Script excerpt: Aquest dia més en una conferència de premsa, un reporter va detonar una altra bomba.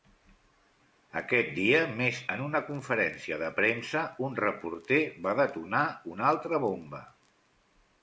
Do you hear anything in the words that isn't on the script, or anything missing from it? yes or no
no